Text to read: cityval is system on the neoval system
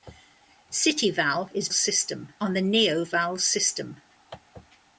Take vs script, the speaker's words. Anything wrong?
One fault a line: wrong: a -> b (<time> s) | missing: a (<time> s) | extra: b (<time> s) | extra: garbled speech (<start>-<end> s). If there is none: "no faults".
no faults